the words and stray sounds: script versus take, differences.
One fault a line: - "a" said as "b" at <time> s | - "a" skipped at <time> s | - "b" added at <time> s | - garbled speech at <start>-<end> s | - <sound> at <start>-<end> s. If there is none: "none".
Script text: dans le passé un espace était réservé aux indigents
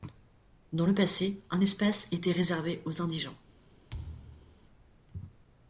- thud at 3.9-4.6 s